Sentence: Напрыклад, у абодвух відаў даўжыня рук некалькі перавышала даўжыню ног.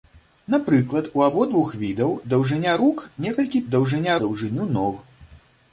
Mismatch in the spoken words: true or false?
true